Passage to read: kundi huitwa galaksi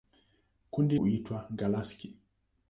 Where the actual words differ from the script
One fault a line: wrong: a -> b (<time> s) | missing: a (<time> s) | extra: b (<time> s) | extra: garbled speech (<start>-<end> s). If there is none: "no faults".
no faults